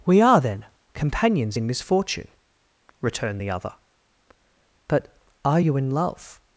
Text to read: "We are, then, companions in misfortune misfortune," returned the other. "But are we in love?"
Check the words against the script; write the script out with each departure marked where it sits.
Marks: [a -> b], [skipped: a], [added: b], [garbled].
"We are, then, companions in misfortune [skipped: misfortune,"] returned the other. "But are [we -> you] in love?"